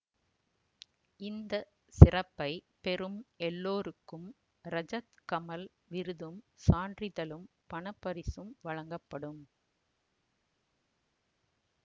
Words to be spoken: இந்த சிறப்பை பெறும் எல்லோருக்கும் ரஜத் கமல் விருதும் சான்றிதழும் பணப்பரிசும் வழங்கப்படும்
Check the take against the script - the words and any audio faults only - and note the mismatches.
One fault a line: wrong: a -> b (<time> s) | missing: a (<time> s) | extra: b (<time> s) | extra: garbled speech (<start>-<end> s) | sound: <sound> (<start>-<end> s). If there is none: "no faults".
no faults